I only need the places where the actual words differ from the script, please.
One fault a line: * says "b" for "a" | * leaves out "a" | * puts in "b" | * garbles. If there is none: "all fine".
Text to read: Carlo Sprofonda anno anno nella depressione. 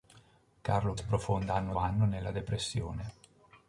all fine